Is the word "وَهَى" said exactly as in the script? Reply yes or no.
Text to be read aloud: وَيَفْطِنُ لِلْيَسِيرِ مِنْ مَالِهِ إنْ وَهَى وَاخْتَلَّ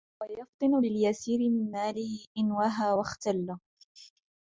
yes